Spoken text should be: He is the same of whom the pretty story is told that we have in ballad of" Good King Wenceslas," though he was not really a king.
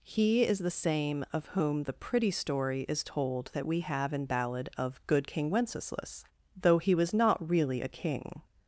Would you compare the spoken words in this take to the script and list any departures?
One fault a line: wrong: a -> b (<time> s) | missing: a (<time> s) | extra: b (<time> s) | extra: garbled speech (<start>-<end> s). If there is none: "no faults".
no faults